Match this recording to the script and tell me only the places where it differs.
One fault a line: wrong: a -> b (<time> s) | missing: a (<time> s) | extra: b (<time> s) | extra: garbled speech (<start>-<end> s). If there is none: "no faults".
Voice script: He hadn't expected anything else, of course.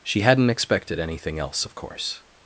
wrong: He -> She (0.0 s)